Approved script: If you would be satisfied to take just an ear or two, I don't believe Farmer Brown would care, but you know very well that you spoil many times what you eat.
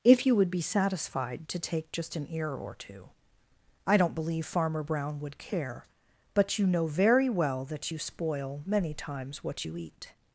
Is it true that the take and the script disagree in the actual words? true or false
false